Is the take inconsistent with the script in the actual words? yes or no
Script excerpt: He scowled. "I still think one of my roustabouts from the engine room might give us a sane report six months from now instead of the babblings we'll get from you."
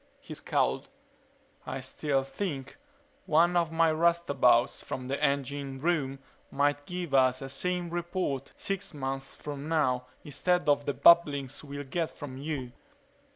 no